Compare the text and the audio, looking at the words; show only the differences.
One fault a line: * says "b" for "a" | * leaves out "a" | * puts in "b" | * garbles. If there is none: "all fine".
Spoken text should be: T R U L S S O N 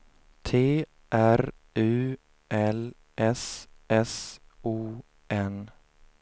all fine